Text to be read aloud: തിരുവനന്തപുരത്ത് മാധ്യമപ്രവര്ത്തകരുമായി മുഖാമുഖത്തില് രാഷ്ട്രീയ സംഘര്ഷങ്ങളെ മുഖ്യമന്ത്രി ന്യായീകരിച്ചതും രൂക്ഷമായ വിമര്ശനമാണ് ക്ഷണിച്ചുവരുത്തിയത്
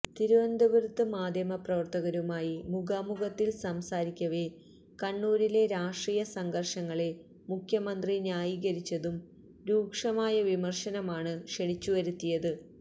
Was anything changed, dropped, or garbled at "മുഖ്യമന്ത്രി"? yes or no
no